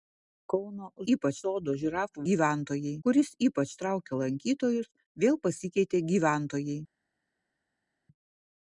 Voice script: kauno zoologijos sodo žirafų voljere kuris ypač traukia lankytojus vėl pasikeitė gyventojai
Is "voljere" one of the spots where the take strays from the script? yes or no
yes